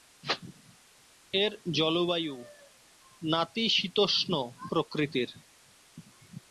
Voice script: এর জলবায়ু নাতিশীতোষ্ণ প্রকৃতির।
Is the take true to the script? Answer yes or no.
yes